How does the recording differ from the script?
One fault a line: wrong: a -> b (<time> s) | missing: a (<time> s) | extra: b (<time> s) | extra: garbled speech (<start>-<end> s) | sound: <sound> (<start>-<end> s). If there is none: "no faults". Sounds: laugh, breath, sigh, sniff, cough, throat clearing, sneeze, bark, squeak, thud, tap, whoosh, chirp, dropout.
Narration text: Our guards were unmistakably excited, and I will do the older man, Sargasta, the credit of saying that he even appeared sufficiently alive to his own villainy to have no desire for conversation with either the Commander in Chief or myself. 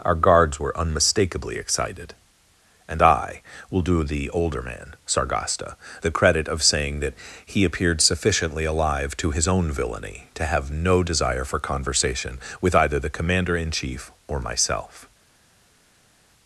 missing: even (7.6 s)